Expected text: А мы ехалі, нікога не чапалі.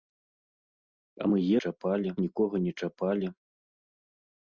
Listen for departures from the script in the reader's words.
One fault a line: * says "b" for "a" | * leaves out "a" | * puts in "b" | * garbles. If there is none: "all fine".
* says "чапалі" for "ехалі"